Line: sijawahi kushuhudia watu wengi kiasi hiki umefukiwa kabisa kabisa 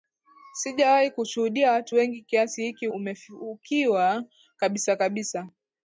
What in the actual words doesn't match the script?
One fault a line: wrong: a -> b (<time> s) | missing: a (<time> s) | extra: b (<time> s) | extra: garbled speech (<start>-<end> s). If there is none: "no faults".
no faults